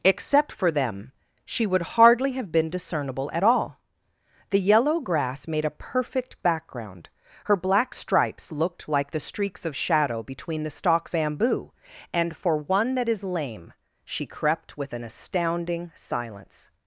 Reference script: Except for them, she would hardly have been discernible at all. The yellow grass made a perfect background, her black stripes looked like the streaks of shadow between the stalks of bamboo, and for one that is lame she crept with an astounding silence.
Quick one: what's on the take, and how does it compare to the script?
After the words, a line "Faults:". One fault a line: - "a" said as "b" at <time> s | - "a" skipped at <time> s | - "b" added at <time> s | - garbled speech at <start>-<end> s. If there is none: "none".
Except for them, she would hardly have been discernible at all. The yellow grass made a perfect background, her black stripes looked like the streaks of shadow between the stalks bamboo, and for one that is lame she crept with an astounding silence.
Faults:
- "of" skipped at 11.1 s